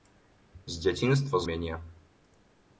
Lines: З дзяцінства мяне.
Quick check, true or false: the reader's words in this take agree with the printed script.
true